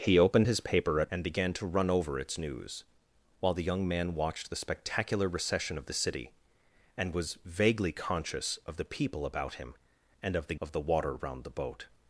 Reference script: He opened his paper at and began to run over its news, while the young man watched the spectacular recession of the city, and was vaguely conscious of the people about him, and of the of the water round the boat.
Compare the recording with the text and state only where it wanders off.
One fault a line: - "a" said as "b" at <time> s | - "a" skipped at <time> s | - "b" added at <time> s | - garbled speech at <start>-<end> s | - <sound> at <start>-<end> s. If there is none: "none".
none